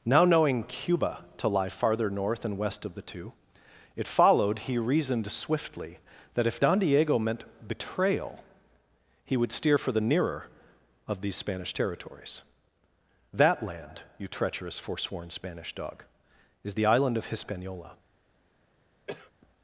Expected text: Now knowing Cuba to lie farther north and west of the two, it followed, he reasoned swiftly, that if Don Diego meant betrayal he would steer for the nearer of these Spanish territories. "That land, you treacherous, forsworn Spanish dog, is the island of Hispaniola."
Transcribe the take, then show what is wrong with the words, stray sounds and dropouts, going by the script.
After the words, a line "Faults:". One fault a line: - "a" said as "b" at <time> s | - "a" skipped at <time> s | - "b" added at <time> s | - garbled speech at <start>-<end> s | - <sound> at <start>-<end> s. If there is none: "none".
Now knowing Cuba to lie farther north and west of the two, it followed, he reasoned swiftly, that if Don Diego meant betrayal he would steer for the nearer of these Spanish territories. "That land, you treacherous, forsworn Spanish dog, is the island of Hispaniola."
Faults:
- cough at 19.1-19.3 s